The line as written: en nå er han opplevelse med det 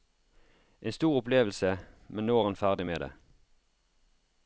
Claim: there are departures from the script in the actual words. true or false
true